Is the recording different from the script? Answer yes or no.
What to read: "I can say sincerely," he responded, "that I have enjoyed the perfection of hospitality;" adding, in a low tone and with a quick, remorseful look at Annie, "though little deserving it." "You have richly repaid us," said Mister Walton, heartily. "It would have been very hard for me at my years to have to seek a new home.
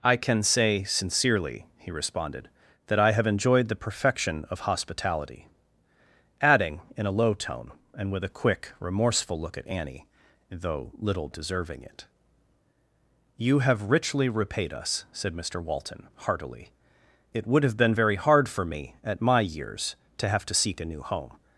no